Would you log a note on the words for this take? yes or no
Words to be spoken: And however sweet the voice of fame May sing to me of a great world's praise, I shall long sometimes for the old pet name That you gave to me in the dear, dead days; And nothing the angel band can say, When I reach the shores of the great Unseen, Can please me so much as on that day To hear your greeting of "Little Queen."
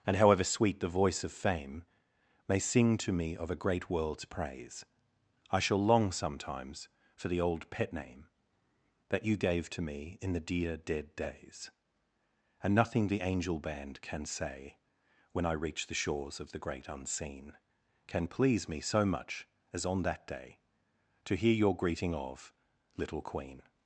no